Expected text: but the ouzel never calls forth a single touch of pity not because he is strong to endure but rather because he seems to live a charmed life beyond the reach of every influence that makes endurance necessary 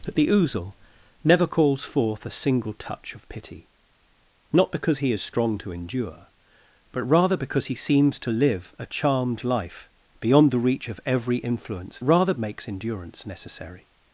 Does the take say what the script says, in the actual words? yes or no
no